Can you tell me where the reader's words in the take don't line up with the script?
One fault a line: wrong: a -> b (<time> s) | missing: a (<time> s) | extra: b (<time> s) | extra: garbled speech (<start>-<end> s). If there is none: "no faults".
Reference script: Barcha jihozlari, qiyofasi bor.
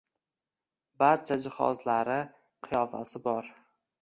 no faults